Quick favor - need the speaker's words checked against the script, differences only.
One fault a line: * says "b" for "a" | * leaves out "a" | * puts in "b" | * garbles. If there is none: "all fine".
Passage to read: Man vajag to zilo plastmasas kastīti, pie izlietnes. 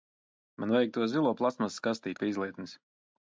all fine